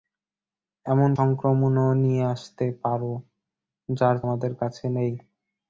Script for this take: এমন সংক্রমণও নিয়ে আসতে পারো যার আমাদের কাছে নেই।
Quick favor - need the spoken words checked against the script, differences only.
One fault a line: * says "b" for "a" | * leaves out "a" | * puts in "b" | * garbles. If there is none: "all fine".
all fine